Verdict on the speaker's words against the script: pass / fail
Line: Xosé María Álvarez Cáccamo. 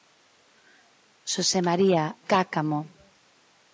fail